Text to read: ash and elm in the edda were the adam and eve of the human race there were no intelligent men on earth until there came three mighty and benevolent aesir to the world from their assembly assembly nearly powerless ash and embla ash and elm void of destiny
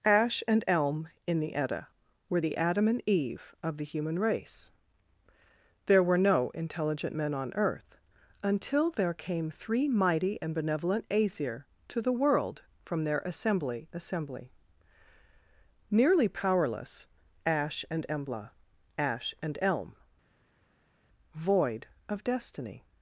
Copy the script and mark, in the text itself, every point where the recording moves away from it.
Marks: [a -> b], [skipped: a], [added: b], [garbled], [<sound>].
ash and elm in the edda were the adam and eve of the human race there were no intelligent men on earth until there came three mighty and benevolent aesir to the world from their assembly assembly nearly powerless ash and embla ash and elm void of destiny